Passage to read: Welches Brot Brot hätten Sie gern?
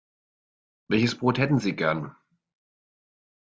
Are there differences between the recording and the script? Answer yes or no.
yes